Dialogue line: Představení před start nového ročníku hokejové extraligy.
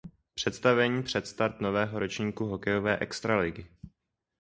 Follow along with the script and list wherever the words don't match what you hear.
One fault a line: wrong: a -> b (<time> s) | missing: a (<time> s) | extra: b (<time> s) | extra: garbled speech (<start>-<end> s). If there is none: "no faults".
no faults